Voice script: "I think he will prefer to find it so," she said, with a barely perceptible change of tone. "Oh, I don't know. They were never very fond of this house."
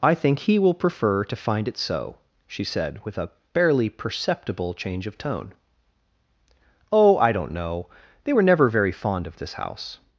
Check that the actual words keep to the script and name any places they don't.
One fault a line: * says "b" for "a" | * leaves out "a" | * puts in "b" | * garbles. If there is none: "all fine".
all fine